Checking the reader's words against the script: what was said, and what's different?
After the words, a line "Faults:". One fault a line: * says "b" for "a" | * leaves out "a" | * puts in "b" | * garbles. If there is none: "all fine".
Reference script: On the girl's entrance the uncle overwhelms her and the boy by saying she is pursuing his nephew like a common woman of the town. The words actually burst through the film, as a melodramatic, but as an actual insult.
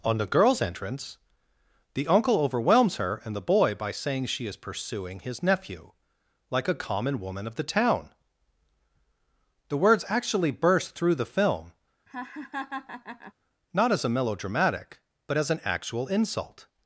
On the girl's entrance the uncle overwhelms her and the boy by saying she is pursuing his nephew like a common woman of the town. The words actually burst through the film, not as a melodramatic, but as an actual insult.
Faults:
* puts in "not"